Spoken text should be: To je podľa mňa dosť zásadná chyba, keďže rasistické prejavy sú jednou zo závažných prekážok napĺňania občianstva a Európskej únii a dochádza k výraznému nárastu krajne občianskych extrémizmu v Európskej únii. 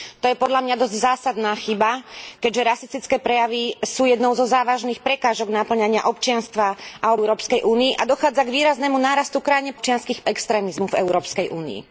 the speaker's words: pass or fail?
pass